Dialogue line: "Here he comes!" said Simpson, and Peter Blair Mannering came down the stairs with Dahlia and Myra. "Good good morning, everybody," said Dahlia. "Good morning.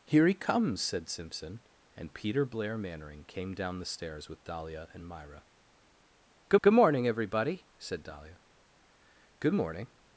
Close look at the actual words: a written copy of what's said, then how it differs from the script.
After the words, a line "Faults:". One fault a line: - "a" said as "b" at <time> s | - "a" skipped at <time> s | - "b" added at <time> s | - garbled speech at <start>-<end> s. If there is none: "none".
"Here he comes!" said Simpson, and Peter Blair Mannering came down the stairs with Dahlia and Myra. "Good good morning, everybody," said Dahlia. "Good morning.
Faults:
none